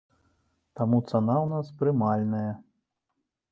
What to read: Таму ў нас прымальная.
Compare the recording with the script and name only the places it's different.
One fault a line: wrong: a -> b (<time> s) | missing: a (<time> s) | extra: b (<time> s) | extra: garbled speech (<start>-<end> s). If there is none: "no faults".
extra: цана (1.1 s)